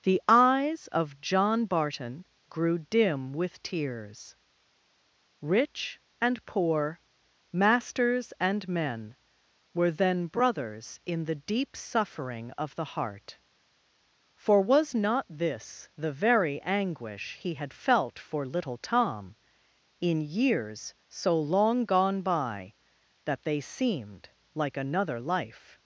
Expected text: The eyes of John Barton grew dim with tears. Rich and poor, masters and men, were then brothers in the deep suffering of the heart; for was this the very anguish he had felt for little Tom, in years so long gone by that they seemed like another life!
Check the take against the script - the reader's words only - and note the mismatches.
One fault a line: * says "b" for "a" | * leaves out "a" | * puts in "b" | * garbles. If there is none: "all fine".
* puts in "not"